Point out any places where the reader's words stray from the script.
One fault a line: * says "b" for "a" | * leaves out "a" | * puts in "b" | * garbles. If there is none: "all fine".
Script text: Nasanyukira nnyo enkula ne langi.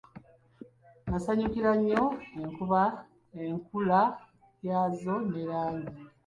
* puts in "yaazo"